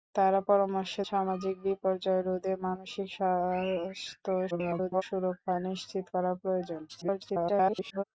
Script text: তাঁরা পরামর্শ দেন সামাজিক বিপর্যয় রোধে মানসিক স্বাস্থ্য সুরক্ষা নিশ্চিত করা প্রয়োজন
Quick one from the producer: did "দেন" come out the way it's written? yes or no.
no